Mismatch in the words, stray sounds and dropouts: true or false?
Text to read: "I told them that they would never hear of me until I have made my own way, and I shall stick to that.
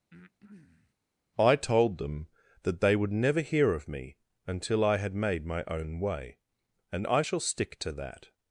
true